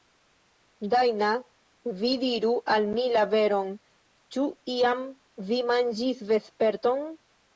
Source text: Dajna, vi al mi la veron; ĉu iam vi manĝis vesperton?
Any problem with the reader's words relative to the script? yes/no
yes